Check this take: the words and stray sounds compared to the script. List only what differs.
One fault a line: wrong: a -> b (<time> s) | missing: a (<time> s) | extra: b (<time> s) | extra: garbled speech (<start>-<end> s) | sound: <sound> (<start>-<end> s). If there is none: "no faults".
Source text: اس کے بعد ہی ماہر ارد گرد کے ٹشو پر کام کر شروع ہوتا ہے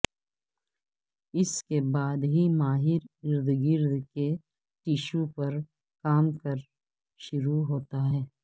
no faults